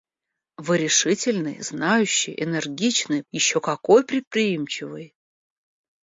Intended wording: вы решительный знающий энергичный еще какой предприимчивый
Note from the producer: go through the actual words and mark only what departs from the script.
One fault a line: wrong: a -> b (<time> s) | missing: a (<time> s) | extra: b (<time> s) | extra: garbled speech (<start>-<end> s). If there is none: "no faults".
no faults